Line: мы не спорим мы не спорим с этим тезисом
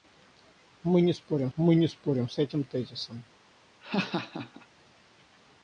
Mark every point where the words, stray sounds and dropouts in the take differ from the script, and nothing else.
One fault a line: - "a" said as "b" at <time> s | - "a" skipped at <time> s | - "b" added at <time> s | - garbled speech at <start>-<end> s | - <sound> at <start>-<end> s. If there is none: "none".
- laugh at 3.8-4.7 s